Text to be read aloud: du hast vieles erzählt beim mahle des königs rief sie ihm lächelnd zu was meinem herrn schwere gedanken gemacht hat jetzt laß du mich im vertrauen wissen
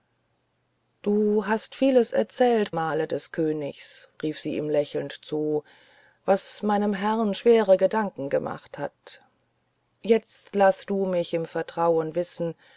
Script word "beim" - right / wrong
wrong